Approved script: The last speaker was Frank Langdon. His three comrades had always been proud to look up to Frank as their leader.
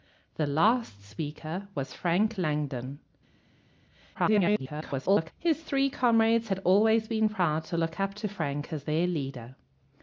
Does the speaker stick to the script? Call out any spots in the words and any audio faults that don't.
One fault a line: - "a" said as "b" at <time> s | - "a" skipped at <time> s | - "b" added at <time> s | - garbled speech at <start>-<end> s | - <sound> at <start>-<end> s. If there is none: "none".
- garbled speech at 4.1-5.3 s